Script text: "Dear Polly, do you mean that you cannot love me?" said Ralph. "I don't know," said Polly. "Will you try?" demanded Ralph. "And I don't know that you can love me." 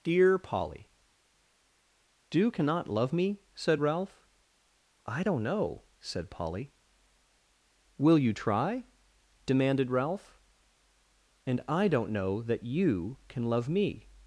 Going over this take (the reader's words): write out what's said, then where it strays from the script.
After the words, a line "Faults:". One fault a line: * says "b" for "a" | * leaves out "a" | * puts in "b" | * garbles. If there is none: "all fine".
"Dear Polly, do cannot love me?" said Ralph. "I don't know," said Polly. "Will you try?" demanded Ralph. "And I don't know that you can love me."
Faults:
* leaves out "you mean that you"